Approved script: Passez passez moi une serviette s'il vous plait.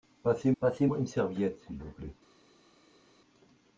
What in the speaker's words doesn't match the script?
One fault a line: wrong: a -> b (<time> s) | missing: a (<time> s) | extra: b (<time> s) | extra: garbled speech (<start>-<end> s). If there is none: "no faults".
no faults